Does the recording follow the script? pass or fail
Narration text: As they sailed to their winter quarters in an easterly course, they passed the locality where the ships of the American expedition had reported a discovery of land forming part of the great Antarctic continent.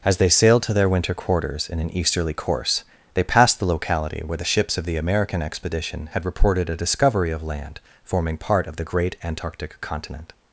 pass